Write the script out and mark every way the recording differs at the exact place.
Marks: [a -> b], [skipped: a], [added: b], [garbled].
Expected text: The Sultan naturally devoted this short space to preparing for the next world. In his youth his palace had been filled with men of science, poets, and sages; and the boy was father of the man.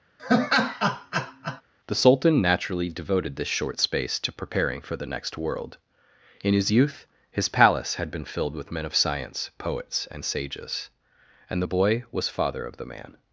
The Sultan naturally devoted this short space to preparing for the next world. In his youth his palace had been filled with men of science, poets, and sages; and the boy was father of the man.